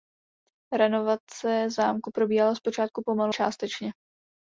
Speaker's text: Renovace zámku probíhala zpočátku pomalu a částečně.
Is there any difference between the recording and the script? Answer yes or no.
yes